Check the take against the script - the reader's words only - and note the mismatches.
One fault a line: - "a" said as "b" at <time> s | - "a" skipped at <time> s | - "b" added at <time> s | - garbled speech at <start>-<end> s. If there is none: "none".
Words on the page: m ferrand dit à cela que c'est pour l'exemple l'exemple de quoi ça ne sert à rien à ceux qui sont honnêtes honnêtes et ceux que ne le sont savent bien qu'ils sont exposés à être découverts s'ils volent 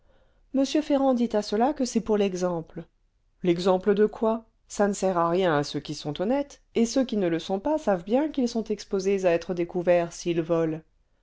- "honnêtes" skipped at 6.6 s
- "que" said as "qui" at 7.0 s
- "pas" added at 7.6 s